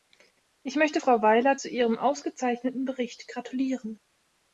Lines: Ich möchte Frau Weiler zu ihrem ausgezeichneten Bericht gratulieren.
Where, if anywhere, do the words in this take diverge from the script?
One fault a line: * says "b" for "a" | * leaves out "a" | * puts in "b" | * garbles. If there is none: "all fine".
all fine